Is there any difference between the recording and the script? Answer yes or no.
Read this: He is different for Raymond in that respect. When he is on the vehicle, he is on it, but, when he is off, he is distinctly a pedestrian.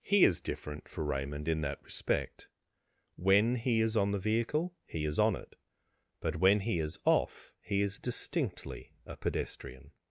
no